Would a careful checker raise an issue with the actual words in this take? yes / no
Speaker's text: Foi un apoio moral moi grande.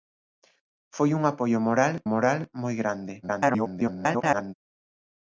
yes